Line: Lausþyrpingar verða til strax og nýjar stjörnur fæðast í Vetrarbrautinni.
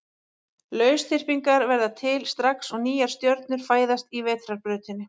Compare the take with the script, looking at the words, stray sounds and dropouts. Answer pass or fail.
pass